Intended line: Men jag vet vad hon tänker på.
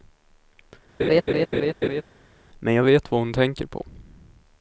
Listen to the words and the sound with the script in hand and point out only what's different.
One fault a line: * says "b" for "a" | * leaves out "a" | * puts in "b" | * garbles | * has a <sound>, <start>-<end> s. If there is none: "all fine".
* has a laugh, 1.0-2.0 s